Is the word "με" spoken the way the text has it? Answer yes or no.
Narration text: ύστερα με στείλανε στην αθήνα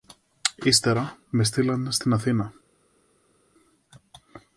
yes